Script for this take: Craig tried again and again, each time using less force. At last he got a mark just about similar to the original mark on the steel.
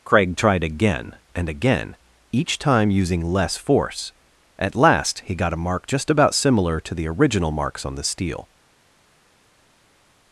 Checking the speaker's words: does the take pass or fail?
fail